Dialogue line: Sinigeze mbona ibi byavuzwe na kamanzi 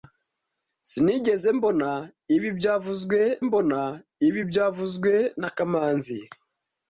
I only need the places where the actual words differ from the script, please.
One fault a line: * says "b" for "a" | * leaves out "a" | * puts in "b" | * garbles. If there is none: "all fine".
* puts in "mbona ibi byavuzwe"